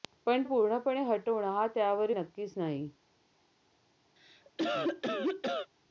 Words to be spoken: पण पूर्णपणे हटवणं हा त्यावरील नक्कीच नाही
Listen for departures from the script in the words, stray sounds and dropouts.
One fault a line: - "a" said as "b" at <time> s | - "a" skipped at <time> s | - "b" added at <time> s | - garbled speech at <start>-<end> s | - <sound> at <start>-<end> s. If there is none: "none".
- cough at 4.2-5.7 s